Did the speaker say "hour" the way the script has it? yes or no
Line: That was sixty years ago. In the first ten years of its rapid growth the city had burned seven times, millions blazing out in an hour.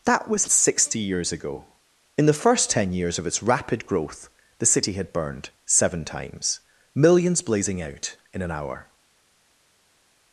yes